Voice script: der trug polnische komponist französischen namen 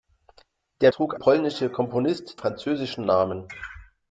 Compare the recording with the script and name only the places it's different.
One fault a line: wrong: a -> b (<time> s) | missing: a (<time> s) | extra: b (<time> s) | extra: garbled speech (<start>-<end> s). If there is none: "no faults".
no faults